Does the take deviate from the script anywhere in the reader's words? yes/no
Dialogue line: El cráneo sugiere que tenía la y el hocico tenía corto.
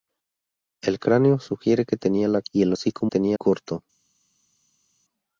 no